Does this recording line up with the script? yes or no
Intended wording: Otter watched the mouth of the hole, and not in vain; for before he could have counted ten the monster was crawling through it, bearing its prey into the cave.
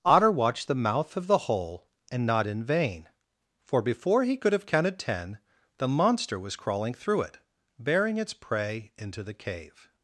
yes